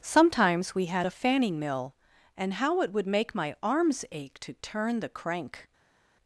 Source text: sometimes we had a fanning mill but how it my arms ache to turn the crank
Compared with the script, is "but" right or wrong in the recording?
wrong